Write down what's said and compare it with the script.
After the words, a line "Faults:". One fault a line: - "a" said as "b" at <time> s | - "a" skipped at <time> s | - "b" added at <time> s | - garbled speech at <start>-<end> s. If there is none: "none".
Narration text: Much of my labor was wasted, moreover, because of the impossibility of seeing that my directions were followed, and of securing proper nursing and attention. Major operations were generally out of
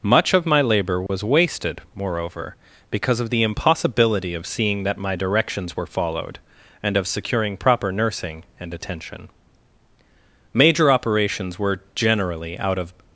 Much of my labor was wasted, moreover, because of the impossibility of seeing that my directions were followed, and of securing proper nursing and attention. Major operations were generally out of
Faults:
none